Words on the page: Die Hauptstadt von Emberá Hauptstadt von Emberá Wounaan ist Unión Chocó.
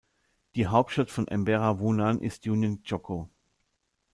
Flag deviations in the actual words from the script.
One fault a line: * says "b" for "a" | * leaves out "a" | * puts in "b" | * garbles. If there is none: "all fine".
* leaves out "Hauptstadt von Emberá"